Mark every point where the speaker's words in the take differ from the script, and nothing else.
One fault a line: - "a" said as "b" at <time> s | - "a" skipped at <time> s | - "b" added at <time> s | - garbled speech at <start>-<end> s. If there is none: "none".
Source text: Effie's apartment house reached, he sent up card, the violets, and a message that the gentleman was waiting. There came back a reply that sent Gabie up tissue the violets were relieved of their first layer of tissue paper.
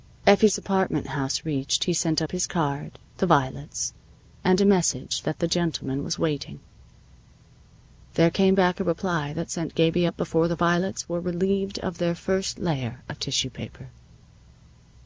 - "his" added at 2.3 s
- "tissue" said as "before" at 10.2 s